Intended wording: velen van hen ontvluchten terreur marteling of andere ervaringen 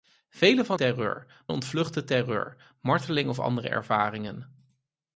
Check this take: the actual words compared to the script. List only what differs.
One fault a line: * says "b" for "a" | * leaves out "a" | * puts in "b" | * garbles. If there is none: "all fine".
* says "terreur" for "hen"